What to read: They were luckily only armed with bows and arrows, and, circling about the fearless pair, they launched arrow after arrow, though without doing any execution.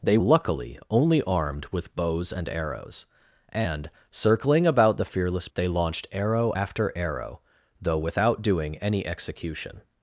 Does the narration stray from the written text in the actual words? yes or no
yes